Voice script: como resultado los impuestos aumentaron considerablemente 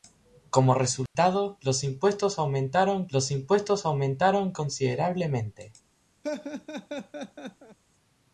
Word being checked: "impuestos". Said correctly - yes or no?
yes